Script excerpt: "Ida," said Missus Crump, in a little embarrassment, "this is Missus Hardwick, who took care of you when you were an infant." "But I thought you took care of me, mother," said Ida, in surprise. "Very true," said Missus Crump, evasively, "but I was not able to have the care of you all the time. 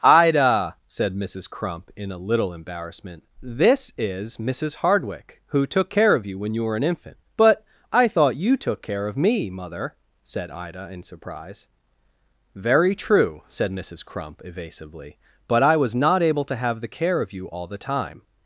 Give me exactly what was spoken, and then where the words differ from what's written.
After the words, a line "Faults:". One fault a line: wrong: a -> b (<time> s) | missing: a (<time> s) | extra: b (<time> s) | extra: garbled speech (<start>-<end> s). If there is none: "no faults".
"Ida," said Missus Crump, in a little embarrassment, "this is Missus Hardwick, who took care of you when you were an infant." "But I thought you took care of me, mother," said Ida, in surprise. "Very true," said Missus Crump, evasively, "but I was not able to have the care of you all the time.
Faults:
no faults